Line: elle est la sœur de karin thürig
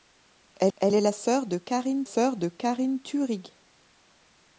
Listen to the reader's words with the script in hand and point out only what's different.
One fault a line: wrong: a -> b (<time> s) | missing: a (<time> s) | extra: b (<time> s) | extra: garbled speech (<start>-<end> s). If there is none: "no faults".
extra: elle (0.8 s)
extra: sœur de karin (2.0 s)